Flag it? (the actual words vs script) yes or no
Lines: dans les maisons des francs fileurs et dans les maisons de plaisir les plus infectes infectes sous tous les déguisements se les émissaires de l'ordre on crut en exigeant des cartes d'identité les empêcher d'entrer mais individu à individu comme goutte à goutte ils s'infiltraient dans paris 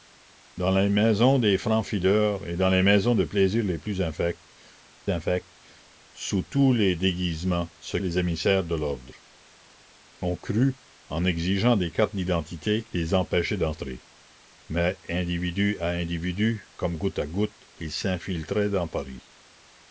no